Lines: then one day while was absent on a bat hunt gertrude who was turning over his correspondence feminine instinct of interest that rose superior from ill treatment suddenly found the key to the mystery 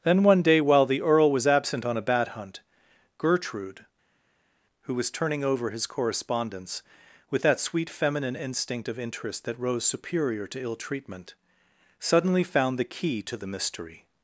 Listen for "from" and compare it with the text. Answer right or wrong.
wrong